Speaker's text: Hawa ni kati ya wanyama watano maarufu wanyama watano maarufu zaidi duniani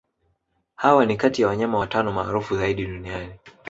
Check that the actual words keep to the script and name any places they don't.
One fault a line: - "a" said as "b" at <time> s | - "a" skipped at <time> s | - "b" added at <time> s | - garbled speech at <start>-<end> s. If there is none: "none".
- "wanyama watano maarufu" skipped at 2.6 s